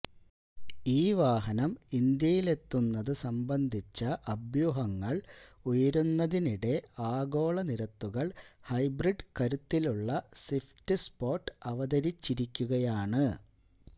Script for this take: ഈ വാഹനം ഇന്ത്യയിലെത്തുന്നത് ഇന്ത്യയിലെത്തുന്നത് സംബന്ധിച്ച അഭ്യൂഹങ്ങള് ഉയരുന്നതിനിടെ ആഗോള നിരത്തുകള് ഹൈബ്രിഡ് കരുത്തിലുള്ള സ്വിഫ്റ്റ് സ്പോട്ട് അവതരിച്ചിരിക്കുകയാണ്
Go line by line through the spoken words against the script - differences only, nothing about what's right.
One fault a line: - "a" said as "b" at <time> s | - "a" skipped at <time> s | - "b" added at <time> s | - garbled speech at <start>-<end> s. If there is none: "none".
- "ഇന്ത്യയിലെത്തുന്നത്" skipped at 3.1 s